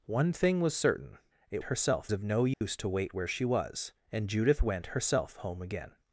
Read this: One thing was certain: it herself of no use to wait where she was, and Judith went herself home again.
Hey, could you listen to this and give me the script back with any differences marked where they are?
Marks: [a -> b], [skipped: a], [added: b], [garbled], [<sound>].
One thing was certain: it herself of no use [dropout] to wait where she was, and Judith went herself home again.